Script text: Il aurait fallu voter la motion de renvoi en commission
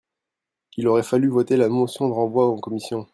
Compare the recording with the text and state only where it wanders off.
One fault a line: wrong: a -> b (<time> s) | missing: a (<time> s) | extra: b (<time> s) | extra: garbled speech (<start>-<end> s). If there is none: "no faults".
no faults